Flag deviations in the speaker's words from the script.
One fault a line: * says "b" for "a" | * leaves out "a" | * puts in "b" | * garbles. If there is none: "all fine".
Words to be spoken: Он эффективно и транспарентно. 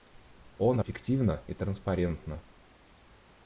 all fine